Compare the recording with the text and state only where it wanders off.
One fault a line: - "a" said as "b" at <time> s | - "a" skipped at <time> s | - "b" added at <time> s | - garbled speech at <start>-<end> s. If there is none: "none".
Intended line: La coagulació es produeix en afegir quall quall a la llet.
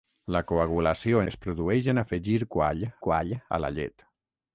none